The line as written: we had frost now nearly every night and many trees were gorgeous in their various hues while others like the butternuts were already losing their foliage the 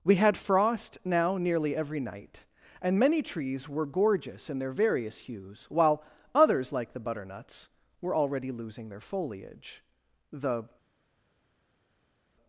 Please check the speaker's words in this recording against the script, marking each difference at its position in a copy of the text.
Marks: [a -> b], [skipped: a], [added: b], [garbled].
we had frost now nearly every night and many trees were gorgeous in their various hues while others like the butternuts were already losing their foliage the